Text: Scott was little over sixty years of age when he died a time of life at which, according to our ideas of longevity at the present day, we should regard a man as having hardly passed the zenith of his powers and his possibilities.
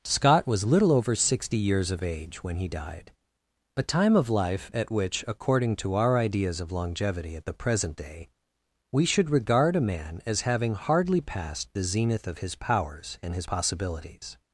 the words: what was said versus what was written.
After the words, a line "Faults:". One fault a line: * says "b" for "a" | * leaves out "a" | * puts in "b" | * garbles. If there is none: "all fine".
Scott was little over sixty years of age when he died a time of life at which, according to our ideas of longevity at the present day, we should regard a man as having hardly passed the zenith of his powers and his possibilities.
Faults:
all fine